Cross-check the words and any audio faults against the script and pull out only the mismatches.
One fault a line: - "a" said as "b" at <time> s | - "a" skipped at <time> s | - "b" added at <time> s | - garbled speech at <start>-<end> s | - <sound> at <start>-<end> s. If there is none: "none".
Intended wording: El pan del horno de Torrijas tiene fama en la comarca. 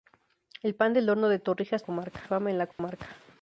- "tiene" said as "comarca" at 1.8 s
- dropout at 2.7-2.8 s